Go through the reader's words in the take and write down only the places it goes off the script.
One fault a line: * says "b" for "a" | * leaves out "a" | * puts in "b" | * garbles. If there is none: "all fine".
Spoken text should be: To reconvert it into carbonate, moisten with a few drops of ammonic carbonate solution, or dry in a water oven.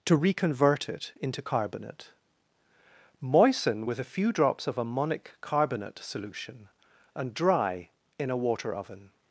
* says "and" for "or"